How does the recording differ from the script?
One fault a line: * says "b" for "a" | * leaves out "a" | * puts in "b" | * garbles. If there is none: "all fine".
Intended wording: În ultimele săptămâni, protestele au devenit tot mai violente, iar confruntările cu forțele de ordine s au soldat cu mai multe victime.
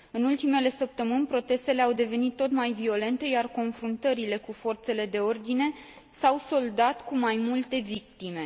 all fine